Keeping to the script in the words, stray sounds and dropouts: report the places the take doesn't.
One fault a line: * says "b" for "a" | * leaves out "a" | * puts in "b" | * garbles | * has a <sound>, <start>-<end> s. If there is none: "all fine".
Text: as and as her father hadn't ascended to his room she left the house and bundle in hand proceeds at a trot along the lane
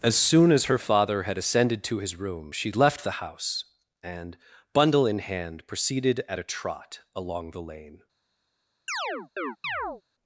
* says "soon" for "and"
* says "had" for "hadn't"
* says "proceeded" for "proceeds"
* has a chirp, 8.9-10.0 s